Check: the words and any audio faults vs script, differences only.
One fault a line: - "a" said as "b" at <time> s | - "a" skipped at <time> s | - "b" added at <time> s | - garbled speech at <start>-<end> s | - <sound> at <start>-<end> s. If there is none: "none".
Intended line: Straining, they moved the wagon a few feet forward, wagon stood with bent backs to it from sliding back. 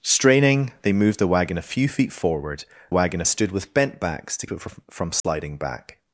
- dropout at 5.2-5.2 s